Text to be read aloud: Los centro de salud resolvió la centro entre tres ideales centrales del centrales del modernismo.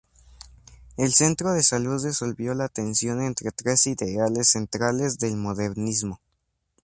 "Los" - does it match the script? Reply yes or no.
no